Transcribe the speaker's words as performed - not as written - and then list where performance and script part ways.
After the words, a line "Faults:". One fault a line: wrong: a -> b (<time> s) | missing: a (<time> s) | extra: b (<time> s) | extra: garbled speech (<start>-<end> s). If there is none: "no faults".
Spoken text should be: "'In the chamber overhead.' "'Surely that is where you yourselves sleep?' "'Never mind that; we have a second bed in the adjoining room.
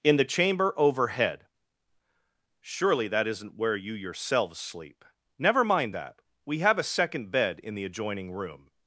"'In the chamber overhead.' "'Surely that isn't where you yourselves sleep?' "'Never mind that; we have a second bed in the adjoining room.
Faults:
wrong: is -> isn't (3.3 s)